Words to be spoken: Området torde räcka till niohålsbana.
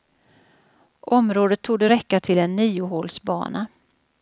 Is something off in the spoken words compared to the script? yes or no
yes